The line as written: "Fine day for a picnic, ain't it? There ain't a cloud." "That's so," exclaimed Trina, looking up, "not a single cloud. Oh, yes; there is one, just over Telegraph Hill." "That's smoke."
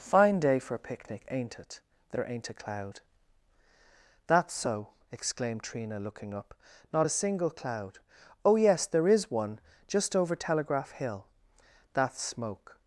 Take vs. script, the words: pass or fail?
pass